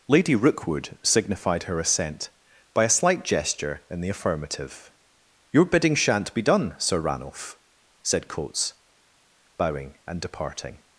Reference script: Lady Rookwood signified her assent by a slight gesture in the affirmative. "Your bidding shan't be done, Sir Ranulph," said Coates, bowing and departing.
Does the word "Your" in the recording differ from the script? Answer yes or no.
no